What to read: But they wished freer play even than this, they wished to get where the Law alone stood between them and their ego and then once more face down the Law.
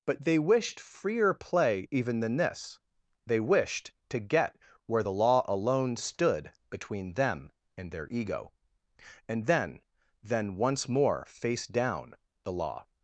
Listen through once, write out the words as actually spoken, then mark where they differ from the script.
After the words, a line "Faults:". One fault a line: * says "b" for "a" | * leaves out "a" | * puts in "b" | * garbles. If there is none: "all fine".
But they wished freer play even than this, they wished to get where the Law alone stood between them and their ego and then then once more face down the Law.
Faults:
* puts in "then"